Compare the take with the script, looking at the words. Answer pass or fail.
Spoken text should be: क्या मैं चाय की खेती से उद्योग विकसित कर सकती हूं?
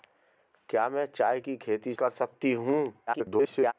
fail